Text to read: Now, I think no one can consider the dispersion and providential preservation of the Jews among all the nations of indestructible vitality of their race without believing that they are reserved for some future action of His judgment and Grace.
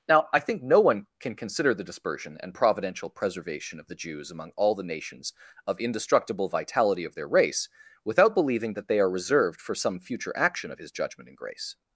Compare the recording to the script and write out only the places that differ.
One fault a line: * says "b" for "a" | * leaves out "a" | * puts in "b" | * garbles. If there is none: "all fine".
all fine